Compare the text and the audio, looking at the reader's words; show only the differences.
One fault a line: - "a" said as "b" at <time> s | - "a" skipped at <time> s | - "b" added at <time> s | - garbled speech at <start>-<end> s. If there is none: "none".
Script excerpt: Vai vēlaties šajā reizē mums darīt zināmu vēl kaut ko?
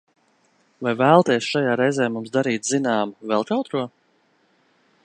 none